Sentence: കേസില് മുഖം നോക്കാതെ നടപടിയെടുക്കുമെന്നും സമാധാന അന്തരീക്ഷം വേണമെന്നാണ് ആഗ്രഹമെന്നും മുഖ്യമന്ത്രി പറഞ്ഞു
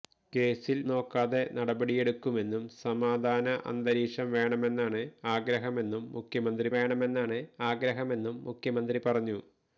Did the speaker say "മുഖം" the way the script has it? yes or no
no